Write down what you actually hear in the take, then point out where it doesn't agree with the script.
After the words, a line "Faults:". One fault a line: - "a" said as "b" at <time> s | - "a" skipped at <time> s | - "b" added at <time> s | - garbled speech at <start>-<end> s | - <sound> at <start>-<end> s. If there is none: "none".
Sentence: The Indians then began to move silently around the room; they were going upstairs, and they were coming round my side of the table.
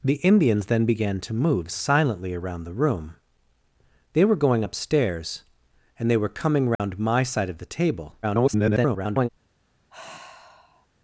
The Indians then began to move silently around the room; they were going upstairs, and they were coming round my side of the table. [garbled]
Faults:
- dropout at 6.8-6.8 s
- garbled speech at 8.2-9.3 s
- sigh at 9.9-10.9 s